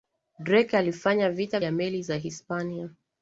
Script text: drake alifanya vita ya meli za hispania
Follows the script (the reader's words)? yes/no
yes